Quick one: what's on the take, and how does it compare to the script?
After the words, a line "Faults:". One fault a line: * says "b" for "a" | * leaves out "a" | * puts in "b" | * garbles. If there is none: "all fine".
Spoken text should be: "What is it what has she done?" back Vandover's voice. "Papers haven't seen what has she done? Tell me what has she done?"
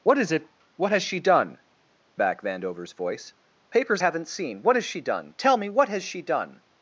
"What is it what has she done?" back Vandover's voice. "Papers haven't seen what has she done? Tell me what has she done?"
Faults:
all fine